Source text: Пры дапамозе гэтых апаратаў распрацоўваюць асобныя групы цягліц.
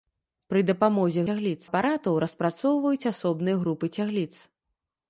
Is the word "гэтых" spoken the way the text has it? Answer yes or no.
no